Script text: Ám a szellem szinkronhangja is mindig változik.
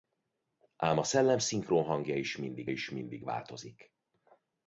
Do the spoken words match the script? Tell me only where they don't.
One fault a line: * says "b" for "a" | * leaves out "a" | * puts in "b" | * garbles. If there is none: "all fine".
* puts in "is mindig"